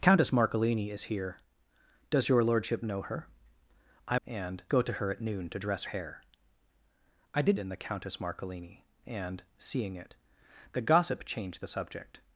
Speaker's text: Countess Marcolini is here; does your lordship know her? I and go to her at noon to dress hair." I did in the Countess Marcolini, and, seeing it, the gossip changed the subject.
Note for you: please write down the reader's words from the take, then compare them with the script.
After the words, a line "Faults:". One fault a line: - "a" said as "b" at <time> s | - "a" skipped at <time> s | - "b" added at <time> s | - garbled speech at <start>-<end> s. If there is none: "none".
Countess Marcolini is here; does your lordship know her? I and go to her at noon to dress hair." I did in the Countess Marcolini, and, seeing it, the gossip changed the subject.
Faults:
none